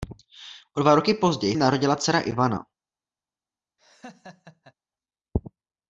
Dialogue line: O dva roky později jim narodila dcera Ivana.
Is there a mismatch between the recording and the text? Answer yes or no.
no